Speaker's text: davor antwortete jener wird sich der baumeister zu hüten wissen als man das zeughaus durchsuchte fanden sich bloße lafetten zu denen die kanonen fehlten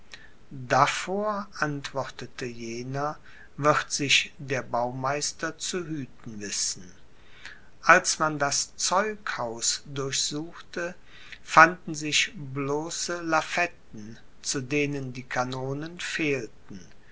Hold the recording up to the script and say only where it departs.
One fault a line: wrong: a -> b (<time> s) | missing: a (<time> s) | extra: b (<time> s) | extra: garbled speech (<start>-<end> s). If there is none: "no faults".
no faults